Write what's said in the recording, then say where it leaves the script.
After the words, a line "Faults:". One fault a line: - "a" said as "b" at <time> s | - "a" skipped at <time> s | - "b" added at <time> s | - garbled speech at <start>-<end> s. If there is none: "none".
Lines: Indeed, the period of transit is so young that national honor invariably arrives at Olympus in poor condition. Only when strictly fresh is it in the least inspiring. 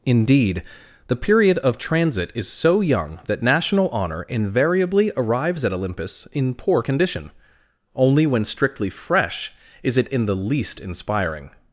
Indeed, the period of transit is so young that national honor invariably arrives at Olympus in poor condition. Only when strictly fresh is it in the least inspiring.
Faults:
none